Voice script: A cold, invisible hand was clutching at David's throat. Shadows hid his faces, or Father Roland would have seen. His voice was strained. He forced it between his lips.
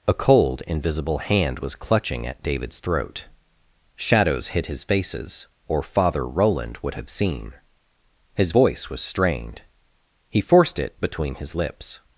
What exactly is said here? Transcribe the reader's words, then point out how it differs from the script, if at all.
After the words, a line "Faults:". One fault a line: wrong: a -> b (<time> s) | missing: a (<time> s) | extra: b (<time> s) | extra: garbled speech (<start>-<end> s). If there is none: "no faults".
A cold, invisible hand was clutching at David's throat. Shadows hid his faces, or Father Roland would have seen. His voice was strained. He forced it between his lips.
Faults:
no faults